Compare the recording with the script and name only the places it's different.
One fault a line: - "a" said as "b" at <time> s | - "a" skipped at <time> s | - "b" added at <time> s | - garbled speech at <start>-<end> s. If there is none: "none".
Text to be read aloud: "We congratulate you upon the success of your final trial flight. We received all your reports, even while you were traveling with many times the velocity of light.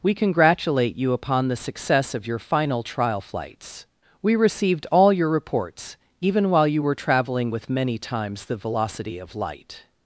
- "flight" said as "flights" at 3.2 s